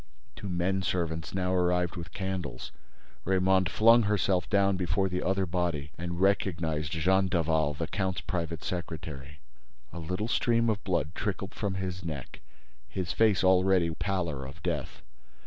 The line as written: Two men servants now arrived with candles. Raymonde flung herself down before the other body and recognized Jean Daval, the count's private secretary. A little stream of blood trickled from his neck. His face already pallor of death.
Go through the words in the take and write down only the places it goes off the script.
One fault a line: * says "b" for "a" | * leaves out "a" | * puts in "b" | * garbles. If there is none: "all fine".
all fine